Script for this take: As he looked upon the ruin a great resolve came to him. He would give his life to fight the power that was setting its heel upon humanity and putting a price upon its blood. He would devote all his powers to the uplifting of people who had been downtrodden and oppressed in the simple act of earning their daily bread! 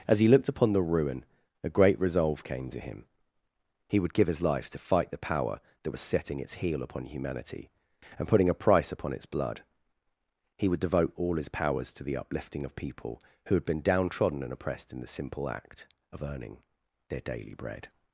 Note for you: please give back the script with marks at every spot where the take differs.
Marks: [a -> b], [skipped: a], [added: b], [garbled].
As he looked upon the ruin a great resolve came to him. He would give his life to fight the power that was setting its heel upon humanity and putting a price upon its blood. He would devote all his powers to the uplifting of people who had been downtrodden and oppressed in the simple act of earning their daily bread!